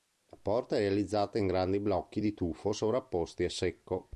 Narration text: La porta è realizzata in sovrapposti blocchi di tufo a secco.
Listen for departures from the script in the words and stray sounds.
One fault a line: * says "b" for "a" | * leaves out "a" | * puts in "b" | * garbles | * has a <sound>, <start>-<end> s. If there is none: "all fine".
* says "grandi" for "sovrapposti"
* puts in "sovrapposti"